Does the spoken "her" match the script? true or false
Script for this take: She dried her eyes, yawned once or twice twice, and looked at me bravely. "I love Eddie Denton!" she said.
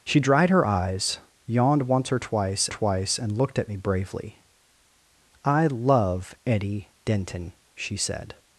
true